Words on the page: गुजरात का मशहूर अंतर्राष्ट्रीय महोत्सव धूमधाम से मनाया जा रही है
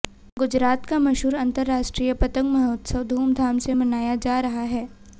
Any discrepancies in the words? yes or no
yes